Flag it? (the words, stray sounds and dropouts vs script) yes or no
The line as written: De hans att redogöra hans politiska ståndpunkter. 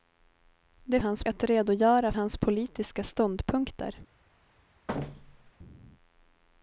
yes